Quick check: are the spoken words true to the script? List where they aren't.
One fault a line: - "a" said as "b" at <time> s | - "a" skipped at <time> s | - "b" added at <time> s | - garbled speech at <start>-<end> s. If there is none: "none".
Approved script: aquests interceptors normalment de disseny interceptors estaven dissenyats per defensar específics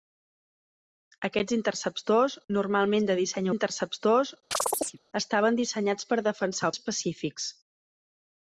none